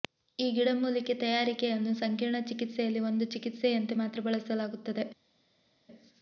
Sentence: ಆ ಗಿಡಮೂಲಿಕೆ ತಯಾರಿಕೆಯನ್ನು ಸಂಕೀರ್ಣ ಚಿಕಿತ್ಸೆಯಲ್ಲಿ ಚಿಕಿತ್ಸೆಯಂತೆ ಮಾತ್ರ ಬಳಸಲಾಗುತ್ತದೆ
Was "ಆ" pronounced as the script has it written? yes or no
no